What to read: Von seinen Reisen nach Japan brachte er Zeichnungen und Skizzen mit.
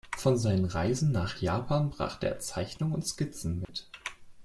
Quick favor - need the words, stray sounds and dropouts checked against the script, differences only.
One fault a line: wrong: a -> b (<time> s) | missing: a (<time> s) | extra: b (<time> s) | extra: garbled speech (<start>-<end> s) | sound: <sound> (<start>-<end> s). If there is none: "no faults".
sound: dropout (3.6-3.7 s)